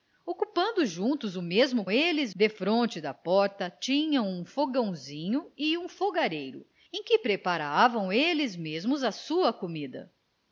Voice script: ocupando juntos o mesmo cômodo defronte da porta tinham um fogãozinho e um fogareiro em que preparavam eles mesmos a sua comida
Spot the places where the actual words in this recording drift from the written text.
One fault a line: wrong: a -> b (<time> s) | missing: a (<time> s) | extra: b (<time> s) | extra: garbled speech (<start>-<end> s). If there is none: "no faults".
wrong: cômodo -> eles (1.9 s)